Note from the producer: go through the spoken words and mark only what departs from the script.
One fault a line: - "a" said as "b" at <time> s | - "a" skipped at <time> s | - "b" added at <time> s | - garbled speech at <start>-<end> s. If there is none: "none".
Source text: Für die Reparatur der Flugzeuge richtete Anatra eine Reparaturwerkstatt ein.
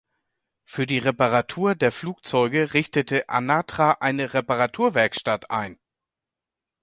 none